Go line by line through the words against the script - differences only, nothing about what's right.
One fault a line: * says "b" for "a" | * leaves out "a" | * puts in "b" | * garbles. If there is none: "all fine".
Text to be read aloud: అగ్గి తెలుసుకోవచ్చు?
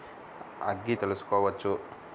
all fine